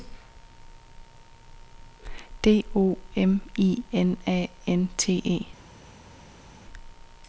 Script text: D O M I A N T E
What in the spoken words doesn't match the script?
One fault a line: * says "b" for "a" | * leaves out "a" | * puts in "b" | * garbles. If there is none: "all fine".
* puts in "N"